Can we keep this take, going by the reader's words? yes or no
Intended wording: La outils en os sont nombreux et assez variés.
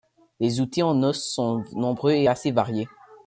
no